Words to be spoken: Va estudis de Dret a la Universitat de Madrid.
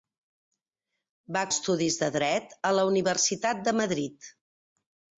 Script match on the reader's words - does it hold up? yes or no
yes